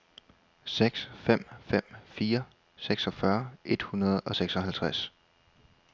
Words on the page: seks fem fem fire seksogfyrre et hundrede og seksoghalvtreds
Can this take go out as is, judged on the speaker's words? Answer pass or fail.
pass